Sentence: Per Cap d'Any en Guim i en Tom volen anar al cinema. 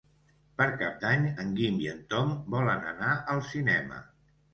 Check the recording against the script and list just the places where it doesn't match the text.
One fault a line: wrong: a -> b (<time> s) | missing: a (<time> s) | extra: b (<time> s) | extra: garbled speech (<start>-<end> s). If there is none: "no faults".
no faults